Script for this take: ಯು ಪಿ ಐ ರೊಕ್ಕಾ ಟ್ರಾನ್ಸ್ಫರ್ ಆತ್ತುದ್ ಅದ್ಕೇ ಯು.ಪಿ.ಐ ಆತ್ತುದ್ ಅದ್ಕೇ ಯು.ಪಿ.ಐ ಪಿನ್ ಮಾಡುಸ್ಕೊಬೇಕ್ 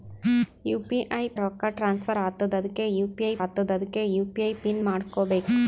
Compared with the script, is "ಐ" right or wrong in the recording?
right